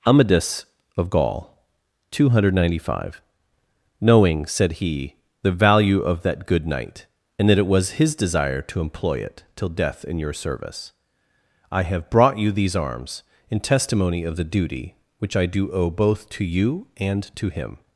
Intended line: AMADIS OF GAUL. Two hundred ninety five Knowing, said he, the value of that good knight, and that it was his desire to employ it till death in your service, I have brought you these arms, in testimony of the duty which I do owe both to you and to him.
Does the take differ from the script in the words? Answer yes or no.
no